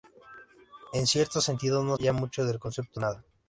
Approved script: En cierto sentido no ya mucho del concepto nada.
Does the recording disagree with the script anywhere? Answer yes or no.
no